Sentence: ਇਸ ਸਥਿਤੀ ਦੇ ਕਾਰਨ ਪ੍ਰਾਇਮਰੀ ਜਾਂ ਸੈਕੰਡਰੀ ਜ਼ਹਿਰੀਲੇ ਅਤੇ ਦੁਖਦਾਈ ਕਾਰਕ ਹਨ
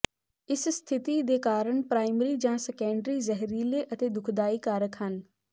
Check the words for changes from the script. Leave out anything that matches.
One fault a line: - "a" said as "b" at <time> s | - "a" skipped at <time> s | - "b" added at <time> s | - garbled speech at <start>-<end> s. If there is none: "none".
none